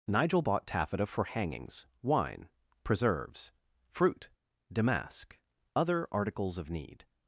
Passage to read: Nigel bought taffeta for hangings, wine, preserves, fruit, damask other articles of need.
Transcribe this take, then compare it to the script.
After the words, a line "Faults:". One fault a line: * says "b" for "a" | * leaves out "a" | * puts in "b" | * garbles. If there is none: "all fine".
Nigel bought taffeta for hangings, wine, preserves, fruit, damask other articles of need.
Faults:
all fine